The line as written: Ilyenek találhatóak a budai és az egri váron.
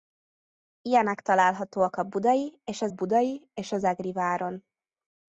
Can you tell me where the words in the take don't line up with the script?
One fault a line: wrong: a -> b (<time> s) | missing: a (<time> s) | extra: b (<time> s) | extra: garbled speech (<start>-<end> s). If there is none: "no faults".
extra: budai és az (2.9 s)